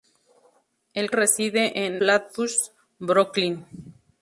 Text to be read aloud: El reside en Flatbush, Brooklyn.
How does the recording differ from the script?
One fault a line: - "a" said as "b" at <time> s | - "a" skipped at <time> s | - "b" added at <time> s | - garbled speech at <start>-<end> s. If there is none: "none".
none